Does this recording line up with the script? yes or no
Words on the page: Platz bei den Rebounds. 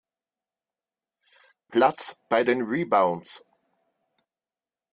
yes